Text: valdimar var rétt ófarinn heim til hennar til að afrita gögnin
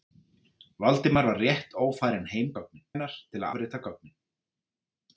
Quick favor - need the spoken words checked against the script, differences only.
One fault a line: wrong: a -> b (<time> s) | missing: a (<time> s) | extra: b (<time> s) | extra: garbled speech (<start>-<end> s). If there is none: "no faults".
wrong: til -> gögnin (2.6 s)
missing: að (3.5 s)